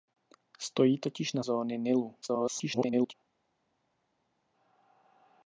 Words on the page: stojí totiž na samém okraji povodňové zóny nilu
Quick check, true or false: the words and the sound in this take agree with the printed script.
false